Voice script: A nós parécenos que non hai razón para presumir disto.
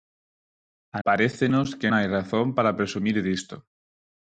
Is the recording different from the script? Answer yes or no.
yes